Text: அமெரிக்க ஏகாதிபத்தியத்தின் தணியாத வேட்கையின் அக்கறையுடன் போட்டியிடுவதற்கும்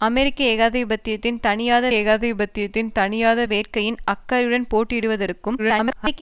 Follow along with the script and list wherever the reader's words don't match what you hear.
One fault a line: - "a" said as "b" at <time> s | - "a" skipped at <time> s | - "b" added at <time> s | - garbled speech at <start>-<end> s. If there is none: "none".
- "ஏகாதிபத்தியத்தின் தணியாத" added at 1.9 s
- garbled speech at 5.6-6.2 s